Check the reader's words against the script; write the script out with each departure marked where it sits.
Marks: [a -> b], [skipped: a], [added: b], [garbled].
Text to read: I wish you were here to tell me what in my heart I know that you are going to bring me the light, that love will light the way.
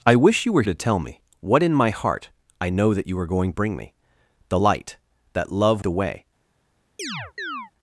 I wish you were [skipped: here] to tell me what in my heart I know that you are going [skipped: to] bring me the light, that love [skipped: will light] the way.